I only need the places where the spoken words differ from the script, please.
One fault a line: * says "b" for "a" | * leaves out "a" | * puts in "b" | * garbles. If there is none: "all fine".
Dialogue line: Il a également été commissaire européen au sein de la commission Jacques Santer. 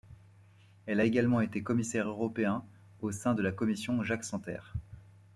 * says "Elle" for "Il"